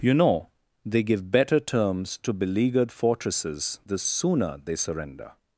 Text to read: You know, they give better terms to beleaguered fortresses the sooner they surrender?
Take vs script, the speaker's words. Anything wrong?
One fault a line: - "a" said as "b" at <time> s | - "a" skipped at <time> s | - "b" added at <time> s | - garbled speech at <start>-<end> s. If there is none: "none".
none